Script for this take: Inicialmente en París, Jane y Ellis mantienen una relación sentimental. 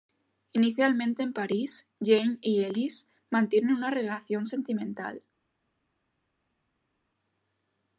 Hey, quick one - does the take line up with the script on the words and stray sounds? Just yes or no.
yes